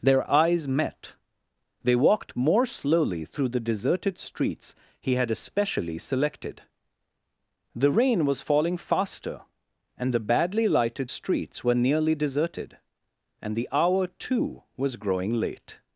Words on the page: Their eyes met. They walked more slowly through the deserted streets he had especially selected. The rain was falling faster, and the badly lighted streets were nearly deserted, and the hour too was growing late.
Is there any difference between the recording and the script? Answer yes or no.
no